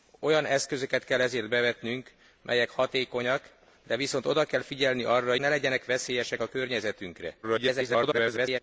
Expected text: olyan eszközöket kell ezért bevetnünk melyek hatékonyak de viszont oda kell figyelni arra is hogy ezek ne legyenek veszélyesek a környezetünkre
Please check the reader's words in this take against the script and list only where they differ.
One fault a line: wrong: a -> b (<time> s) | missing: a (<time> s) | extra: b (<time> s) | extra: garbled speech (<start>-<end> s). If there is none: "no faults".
missing: is hogy ezek (5.3 s)
extra: garbled speech (7.4-8.6 s)